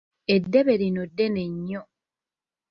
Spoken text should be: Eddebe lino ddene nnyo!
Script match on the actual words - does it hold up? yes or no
yes